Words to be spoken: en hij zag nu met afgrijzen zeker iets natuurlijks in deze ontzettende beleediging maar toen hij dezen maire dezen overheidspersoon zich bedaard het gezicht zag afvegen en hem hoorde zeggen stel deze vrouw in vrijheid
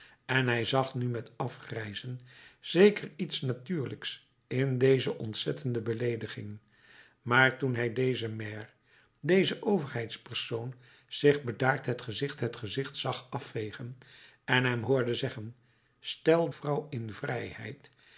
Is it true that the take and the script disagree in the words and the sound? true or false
true